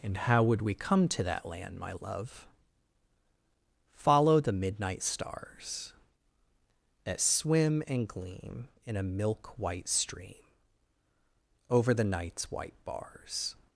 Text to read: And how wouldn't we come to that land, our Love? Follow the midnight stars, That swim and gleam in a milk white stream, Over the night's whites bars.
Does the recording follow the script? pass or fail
fail